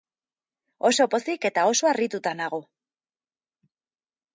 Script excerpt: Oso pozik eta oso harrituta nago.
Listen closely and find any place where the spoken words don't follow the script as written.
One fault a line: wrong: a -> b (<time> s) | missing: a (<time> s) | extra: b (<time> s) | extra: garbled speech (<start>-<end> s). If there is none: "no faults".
no faults